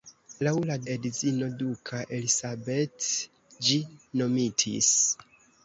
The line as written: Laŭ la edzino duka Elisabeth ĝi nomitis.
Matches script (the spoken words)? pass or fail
pass